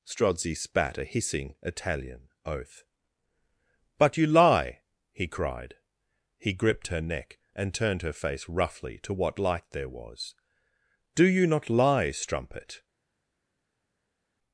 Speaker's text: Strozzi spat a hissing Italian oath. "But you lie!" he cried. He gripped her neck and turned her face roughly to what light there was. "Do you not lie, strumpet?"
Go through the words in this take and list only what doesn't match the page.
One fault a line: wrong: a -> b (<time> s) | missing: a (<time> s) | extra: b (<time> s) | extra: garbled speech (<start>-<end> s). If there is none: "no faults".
no faults